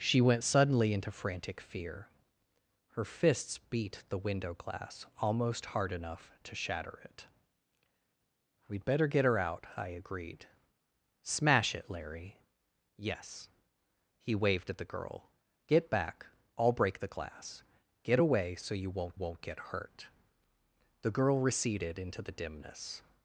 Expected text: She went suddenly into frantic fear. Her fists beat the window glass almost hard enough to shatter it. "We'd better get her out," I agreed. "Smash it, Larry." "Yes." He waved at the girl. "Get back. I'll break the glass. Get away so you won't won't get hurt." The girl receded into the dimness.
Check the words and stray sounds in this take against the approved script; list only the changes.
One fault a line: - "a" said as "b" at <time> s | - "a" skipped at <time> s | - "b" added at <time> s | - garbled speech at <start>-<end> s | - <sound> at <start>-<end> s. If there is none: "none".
none